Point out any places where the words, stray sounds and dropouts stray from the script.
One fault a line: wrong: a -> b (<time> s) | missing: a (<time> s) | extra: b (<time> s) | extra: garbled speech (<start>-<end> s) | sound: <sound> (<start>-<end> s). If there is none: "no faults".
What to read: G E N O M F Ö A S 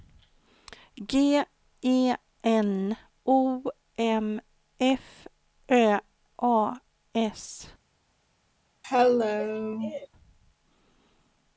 sound: cough (8.8-10.1 s)